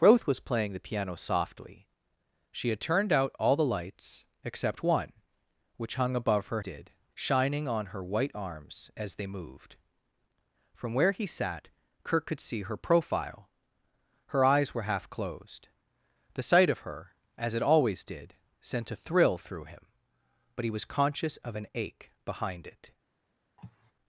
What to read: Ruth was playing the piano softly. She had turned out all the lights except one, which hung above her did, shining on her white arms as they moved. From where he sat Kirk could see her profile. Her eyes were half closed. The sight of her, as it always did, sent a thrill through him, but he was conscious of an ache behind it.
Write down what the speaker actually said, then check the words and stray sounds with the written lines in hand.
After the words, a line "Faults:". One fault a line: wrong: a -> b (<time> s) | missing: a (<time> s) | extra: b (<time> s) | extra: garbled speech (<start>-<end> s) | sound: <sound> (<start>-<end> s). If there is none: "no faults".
Ruth was playing the piano softly. She had turned out all the lights except one, which hung above her did, shining on her white arms as they moved. From where he sat Kirk could see her profile. Her eyes were half closed. The sight of her, as it always did, sent a thrill through him, but he was conscious of an ache behind it.
Faults:
sound: cough (23.6-23.9 s)